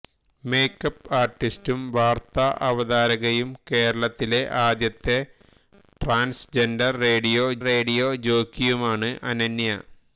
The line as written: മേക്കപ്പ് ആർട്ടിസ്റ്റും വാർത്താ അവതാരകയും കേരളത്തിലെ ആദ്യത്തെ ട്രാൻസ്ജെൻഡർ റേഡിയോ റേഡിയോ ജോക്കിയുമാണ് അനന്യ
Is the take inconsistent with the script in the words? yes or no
no